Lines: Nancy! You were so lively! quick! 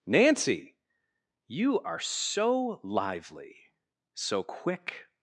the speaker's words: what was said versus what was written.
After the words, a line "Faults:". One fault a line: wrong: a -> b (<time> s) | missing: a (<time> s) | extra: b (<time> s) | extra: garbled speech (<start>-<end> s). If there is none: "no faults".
Nancy! You are so lively! so quick!
Faults:
wrong: were -> are (1.8 s)
extra: so (4.2 s)